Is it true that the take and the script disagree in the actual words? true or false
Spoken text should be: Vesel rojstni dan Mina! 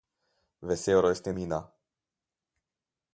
true